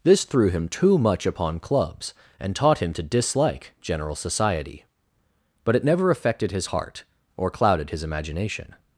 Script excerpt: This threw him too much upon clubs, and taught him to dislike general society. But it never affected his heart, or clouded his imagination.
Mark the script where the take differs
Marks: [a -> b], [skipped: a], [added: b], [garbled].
This threw him too much upon clubs, and taught him to dislike general society. But it never affected his heart, or clouded his imagination.